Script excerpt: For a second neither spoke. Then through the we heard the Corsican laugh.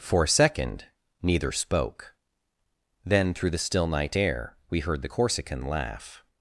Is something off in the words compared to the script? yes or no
yes